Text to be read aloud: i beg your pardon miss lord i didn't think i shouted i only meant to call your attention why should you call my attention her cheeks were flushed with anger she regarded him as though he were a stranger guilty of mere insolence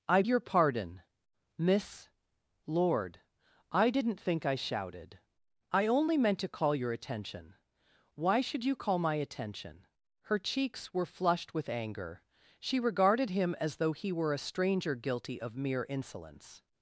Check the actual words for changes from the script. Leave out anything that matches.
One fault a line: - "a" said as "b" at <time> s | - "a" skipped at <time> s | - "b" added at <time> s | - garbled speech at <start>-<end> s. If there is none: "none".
- "beg" skipped at 0.2 s